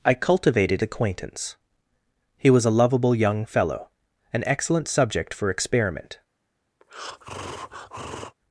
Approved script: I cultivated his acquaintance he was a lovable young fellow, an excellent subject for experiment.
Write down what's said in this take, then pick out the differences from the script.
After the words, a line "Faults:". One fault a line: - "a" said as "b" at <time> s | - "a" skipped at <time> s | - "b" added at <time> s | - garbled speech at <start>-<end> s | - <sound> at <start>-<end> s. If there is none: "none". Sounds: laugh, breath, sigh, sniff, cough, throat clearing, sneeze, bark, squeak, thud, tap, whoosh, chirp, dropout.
I cultivated acquaintance he was a lovable young fellow, an excellent subject for experiment.
Faults:
- "his" skipped at 0.8 s
- breath at 6.8-8.4 s